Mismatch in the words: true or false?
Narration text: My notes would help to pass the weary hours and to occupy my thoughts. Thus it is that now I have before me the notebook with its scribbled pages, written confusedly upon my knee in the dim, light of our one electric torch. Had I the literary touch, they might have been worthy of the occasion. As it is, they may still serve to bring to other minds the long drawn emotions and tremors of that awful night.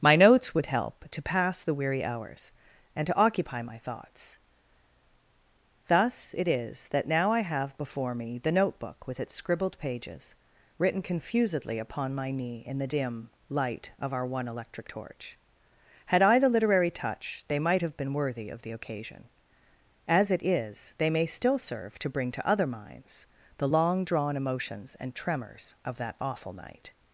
false